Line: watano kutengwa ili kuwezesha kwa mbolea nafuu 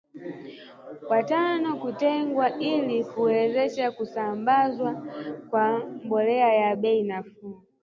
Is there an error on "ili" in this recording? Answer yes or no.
no